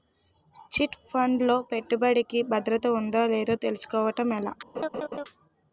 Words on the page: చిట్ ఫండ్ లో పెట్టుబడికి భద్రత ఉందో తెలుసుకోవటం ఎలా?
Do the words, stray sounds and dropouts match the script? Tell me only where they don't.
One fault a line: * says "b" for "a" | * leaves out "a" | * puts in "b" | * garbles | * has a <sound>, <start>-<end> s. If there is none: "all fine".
* puts in "లేదో"
* has a laugh, 4.7-5.2 s